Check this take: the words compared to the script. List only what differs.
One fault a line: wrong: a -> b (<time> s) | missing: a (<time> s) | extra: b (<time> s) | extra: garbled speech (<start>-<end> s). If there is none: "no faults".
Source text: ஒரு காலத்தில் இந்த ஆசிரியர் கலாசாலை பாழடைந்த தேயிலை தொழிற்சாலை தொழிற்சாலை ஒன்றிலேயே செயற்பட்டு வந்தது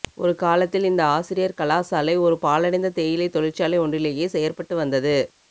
extra: ஒரு (2.2 s)
missing: தொழிற்சாலை (3.8 s)